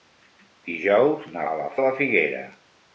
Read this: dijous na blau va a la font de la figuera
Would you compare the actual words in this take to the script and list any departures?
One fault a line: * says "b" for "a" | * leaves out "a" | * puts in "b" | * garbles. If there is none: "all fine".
* leaves out "blau va"
* leaves out "font"